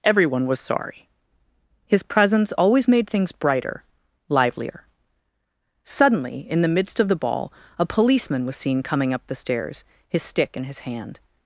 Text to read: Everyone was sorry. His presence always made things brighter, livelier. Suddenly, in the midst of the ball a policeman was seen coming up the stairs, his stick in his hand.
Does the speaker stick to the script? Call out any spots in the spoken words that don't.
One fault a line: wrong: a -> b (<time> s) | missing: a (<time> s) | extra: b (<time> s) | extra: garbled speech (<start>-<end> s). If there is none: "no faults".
no faults